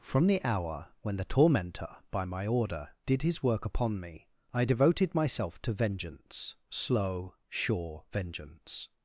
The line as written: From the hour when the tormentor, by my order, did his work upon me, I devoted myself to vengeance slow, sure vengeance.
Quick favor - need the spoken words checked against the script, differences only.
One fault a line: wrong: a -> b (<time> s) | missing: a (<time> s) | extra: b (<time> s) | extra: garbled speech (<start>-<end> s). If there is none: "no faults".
no faults